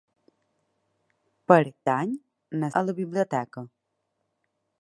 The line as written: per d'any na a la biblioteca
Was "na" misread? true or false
false